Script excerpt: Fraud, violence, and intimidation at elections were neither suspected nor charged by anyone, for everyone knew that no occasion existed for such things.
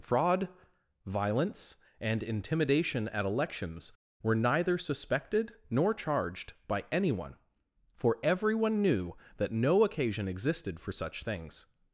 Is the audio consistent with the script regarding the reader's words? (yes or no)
yes